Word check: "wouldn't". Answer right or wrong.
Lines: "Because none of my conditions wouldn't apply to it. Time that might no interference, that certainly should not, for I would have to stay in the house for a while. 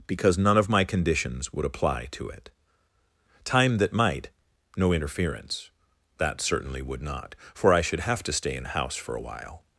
wrong